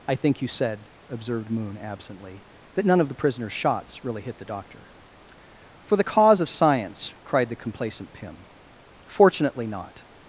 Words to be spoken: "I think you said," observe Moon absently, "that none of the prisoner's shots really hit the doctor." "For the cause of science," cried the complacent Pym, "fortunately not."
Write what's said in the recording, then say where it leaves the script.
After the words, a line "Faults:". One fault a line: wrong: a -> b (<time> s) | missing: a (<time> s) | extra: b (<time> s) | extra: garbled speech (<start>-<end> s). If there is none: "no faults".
"I think you said," observed Moon absently, "that none of the prisoner's shots really hit the doctor." "For the cause of science," cried the complacent Pym, "fortunately not."
Faults:
wrong: observe -> observed (1.1 s)